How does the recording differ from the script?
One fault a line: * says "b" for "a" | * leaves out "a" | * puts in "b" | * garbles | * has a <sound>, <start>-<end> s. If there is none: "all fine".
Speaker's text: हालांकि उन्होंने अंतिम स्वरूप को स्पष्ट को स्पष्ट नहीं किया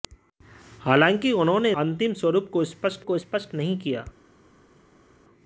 all fine